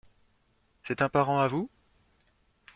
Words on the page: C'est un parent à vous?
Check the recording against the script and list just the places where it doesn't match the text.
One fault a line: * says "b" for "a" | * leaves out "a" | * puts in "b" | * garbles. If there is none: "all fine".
all fine